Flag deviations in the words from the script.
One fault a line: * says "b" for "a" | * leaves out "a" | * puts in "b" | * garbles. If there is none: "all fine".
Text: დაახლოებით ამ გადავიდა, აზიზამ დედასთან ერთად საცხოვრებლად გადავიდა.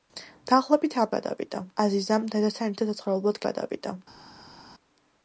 all fine